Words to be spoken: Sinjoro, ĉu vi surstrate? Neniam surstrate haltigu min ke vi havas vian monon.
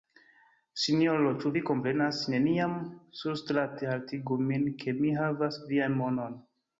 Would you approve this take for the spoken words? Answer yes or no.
no